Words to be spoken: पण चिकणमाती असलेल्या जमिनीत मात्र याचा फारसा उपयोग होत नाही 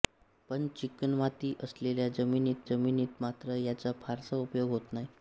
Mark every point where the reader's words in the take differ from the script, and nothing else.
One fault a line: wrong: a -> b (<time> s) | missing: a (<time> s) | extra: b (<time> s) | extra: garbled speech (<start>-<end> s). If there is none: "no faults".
extra: जमिनीत (2.7 s)